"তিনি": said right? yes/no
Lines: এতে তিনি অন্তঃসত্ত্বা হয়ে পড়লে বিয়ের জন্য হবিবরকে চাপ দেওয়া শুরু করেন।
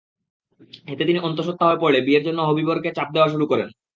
yes